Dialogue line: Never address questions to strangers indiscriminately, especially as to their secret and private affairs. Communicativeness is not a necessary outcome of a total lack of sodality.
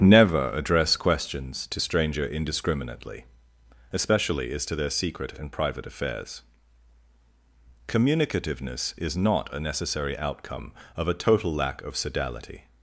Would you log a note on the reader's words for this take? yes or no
yes